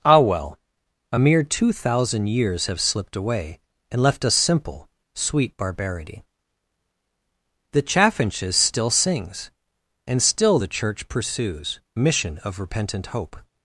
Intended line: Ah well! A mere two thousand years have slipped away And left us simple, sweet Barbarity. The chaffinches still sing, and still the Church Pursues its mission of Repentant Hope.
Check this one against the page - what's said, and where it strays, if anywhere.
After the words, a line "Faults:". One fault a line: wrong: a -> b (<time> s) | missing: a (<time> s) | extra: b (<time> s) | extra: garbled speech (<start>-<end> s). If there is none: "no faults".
Ah well! A mere two thousand years have slipped away And left us simple, sweet Barbarity. The chaffinches still sings, and still the Church Pursues mission of Repentant Hope.
Faults:
wrong: sing -> sings (8.9 s)
missing: its (11.8 s)